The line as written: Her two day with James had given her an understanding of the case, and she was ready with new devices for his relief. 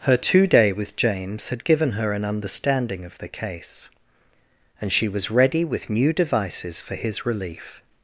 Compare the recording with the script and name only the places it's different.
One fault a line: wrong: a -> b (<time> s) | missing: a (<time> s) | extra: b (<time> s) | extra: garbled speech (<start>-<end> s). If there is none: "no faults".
no faults